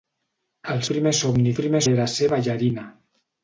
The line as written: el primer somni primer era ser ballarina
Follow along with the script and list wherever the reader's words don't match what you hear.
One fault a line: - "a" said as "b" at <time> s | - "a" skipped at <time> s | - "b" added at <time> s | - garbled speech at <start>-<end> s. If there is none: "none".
none